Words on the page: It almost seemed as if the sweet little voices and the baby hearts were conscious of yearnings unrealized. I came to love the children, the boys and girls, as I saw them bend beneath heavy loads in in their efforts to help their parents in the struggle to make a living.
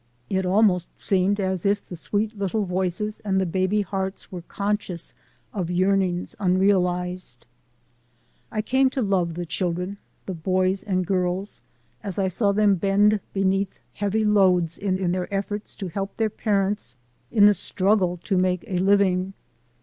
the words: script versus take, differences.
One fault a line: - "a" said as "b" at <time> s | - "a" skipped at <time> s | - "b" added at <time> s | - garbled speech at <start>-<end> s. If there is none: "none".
none